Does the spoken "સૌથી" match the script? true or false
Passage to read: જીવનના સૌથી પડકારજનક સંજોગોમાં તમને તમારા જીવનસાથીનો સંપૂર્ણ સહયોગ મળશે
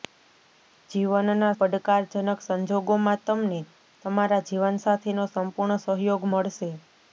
false